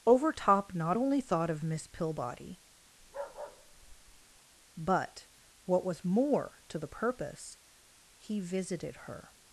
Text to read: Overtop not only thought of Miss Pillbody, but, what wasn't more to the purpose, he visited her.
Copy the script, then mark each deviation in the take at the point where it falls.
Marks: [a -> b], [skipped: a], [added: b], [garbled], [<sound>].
Overtop not only thought of Miss Pillbody, [bark] but, what [wasn't -> was] more to the purpose, he visited her.